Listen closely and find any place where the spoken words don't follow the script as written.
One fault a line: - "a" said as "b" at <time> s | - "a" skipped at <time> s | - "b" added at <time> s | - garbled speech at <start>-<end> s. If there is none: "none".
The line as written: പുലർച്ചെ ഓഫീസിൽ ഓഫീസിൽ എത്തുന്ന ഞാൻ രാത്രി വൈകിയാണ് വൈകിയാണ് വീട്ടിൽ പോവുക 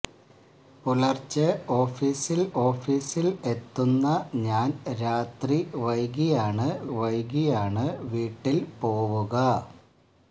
none